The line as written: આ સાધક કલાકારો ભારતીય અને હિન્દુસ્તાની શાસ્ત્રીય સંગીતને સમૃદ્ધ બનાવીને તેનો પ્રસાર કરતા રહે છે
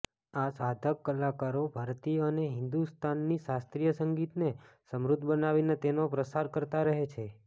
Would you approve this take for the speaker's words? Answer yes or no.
yes